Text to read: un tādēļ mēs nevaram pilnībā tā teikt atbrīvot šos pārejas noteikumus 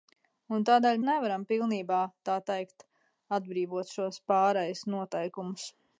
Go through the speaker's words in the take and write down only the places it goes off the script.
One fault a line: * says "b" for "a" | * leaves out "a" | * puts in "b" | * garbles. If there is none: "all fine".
* leaves out "mēs"